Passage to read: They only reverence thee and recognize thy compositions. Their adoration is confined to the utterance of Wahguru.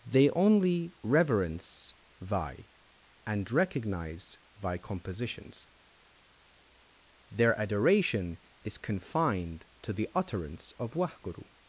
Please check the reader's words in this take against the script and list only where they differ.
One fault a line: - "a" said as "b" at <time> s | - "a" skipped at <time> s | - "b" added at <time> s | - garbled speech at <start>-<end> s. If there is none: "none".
- "thee" said as "thy" at 2.2 s